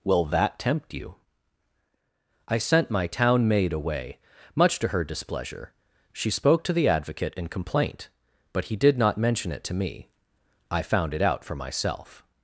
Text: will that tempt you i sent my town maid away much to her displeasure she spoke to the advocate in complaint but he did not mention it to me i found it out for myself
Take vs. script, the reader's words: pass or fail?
pass